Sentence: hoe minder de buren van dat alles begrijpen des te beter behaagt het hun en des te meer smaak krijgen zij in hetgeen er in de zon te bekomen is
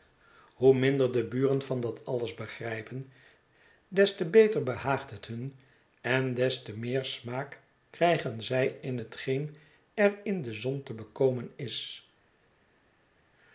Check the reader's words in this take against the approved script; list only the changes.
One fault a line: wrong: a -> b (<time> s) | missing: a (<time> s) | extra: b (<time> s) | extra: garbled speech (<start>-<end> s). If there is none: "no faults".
no faults